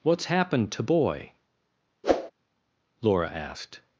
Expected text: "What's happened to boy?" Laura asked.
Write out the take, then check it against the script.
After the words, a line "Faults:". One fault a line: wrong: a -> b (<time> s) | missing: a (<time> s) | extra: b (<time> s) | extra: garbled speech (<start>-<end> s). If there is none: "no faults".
"What's happened to boy?" Laura asked.
Faults:
no faults